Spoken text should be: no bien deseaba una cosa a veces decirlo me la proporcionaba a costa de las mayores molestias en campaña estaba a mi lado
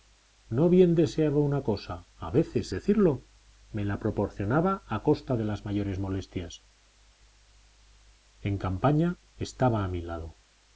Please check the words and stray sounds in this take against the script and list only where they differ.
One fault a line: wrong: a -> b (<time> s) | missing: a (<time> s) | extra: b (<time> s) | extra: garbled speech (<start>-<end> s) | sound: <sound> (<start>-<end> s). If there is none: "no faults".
no faults